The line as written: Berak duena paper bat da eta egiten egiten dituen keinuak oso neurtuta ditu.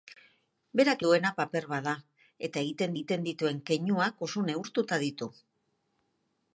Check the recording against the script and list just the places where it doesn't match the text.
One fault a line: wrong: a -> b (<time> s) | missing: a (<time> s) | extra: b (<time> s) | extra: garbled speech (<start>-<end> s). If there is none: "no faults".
no faults